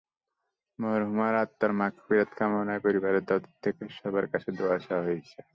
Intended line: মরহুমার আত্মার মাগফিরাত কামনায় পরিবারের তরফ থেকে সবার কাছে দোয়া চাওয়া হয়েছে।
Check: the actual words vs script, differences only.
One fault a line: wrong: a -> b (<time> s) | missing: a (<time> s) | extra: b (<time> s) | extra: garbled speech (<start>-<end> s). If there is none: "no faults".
no faults